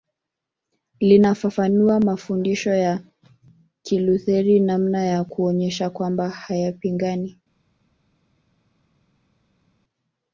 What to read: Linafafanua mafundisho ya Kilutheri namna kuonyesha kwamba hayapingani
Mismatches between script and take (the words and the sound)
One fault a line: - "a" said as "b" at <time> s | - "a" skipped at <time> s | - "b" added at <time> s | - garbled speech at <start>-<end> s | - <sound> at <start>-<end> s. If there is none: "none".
- "ya" added at 5.0 s